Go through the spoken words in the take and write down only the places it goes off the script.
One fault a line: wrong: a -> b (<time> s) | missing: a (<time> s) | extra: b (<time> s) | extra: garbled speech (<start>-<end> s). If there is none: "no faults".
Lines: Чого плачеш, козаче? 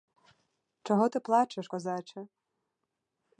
extra: ти (1.1 s)